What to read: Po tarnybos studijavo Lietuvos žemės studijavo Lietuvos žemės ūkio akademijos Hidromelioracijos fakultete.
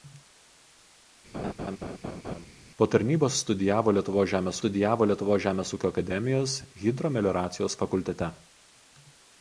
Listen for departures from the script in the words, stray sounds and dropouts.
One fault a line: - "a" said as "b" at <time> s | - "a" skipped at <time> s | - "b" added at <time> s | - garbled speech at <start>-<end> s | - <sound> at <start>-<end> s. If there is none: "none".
- laugh at 1.3-2.5 s